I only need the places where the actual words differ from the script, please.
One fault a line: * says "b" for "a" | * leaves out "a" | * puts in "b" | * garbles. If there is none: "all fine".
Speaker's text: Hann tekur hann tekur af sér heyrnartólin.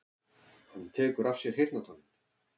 * leaves out "hann tekur"